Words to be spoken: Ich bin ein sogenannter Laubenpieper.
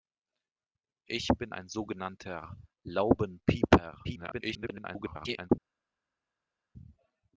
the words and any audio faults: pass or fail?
fail